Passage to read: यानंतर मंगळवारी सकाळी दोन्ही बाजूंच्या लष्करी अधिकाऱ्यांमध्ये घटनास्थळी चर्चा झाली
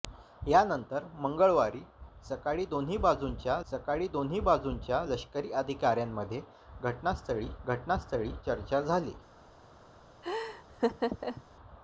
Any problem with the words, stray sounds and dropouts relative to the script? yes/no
yes